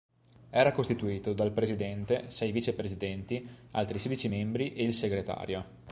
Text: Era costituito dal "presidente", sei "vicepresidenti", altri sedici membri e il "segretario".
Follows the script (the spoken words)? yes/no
yes